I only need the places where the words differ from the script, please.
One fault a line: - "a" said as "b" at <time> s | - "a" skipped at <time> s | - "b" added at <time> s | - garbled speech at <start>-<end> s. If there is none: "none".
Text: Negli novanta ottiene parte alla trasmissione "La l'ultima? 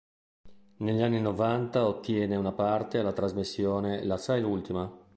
- "anni" added at 1.0 s
- "una" added at 2.4 s
- "sai" added at 4.2 s